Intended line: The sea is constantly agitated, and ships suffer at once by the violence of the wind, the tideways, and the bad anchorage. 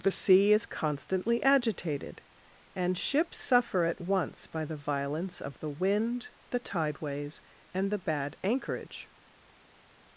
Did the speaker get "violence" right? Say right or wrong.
right